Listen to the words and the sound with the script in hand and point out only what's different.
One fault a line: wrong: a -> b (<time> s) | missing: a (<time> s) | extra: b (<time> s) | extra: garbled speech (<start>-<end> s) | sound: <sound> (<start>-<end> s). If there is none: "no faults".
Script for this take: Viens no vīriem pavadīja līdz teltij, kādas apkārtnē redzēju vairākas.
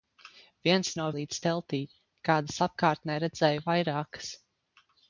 missing: vīriem pavadīja (1.1 s)